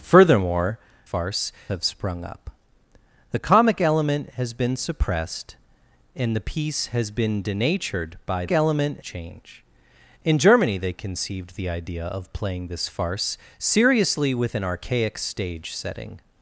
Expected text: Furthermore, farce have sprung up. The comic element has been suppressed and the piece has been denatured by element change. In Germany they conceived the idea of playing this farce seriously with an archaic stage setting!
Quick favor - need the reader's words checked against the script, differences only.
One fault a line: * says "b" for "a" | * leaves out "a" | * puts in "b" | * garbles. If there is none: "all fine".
all fine